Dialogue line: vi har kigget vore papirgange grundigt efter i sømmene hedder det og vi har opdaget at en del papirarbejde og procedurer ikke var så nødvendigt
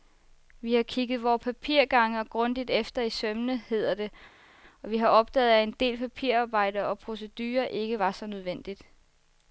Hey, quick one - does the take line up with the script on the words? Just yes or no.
yes